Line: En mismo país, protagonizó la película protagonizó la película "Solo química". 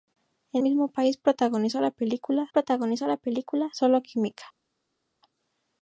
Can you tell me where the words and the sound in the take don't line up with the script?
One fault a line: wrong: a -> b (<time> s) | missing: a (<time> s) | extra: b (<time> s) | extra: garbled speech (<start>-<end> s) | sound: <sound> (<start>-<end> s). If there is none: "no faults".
no faults